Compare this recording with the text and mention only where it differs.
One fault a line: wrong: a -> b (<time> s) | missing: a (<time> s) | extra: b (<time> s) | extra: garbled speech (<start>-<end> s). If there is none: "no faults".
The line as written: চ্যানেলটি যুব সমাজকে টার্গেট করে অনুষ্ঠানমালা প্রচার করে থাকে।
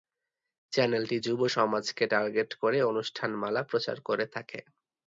no faults